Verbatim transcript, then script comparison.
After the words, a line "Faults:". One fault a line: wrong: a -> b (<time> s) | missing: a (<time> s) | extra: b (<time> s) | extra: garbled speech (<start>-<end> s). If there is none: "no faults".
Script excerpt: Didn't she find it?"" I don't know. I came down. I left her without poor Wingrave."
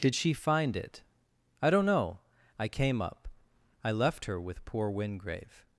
Did she find it?"" I don't know. I came up. I left her with poor Wingrave."
Faults:
wrong: Didn't -> Did (0.0 s)
wrong: down -> up (3.0 s)
wrong: without -> with (4.4 s)